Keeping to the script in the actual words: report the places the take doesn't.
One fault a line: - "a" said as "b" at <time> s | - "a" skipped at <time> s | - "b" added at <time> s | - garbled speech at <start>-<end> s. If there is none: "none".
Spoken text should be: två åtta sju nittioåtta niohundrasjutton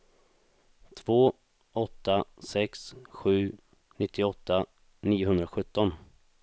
- "sex" added at 2.4 s